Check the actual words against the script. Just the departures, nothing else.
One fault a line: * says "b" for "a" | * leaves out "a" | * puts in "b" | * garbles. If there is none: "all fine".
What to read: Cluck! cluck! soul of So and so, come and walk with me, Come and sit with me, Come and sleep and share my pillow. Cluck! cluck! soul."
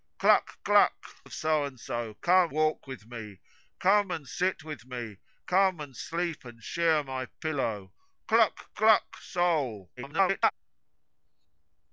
* leaves out "soul"
* leaves out "and"
* garbles